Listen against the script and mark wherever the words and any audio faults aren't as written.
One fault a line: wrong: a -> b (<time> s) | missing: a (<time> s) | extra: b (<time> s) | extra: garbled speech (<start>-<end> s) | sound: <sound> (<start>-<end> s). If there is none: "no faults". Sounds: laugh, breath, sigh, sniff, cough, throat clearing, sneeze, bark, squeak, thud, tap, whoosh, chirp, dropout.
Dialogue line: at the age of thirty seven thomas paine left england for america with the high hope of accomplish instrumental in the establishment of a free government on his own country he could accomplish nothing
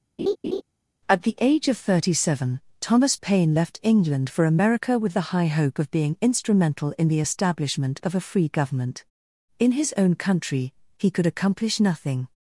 sound: laugh (0.2-0.6 s)
wrong: accomplish -> being (5.9 s)
wrong: on -> in (9.6 s)